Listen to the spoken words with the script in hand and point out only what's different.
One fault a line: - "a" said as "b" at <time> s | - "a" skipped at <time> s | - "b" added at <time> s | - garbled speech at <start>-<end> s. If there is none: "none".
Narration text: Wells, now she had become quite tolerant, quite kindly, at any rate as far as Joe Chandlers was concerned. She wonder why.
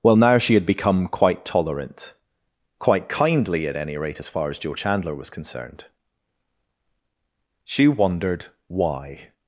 - "Wells" said as "Well" at 0.0 s
- "Chandlers" said as "Chandler" at 4.7 s
- "wonder" said as "wondered" at 7.9 s